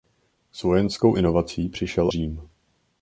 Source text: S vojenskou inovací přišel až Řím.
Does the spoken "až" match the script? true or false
false